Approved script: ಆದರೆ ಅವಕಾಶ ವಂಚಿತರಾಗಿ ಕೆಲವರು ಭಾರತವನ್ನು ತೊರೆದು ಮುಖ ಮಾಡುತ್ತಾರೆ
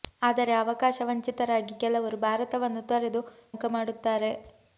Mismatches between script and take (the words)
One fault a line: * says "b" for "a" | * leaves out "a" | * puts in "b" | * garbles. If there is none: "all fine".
all fine